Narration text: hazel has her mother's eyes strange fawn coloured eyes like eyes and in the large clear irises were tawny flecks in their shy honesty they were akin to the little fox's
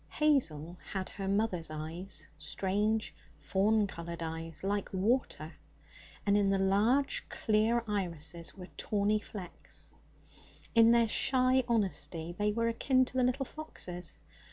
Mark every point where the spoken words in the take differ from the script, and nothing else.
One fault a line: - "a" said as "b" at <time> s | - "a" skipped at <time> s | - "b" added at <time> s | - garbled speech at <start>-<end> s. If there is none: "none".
- "has" said as "had" at 0.9 s
- "eyes" said as "water" at 4.9 s